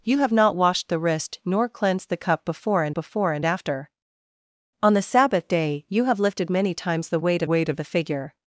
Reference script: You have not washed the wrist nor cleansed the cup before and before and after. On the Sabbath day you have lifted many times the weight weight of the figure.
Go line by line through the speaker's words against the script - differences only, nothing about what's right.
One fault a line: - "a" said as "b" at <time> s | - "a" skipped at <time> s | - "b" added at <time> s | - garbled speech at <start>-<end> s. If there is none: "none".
none